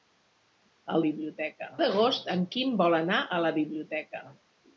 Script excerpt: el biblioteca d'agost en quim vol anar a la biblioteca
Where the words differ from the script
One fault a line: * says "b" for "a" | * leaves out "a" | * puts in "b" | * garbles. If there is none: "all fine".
all fine